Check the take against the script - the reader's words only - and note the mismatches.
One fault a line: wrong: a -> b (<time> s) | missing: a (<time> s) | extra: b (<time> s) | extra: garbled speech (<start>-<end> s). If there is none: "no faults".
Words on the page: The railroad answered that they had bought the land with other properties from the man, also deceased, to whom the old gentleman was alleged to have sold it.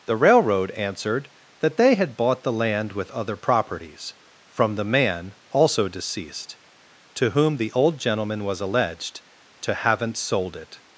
wrong: have -> haven't (9.7 s)